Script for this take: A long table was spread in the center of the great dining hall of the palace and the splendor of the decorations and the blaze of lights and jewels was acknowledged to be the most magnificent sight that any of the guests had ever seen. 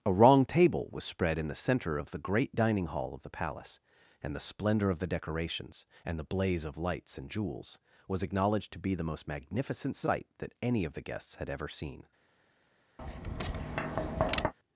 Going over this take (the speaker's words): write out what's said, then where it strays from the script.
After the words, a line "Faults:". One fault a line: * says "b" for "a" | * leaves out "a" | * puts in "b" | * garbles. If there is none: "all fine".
A wrong table was spread in the center of the great dining hall of the palace and the splendor of the decorations and the blaze of lights and jewels was acknowledged to be the most magnificent sight that any of the guests had ever seen.
Faults:
* says "wrong" for "long"